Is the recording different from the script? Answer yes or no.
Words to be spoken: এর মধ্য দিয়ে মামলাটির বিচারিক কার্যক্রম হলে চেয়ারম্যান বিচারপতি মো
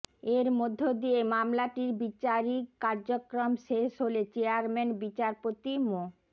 yes